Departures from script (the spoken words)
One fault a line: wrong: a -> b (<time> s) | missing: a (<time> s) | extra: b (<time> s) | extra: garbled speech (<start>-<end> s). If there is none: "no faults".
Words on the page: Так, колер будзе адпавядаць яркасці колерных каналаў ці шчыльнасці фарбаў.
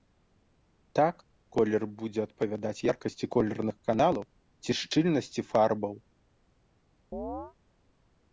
no faults